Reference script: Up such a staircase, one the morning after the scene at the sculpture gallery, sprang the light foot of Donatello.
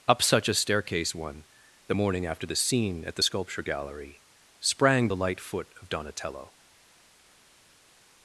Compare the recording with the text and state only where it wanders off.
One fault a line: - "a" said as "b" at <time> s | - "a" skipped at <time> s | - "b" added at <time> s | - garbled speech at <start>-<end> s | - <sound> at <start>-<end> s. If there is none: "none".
none